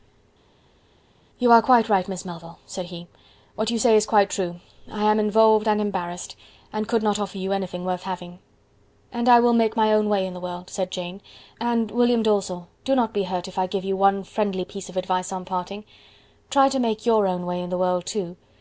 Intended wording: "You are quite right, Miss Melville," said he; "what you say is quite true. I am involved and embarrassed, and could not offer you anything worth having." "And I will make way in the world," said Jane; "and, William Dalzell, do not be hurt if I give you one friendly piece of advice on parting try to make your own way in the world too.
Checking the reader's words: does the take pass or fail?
fail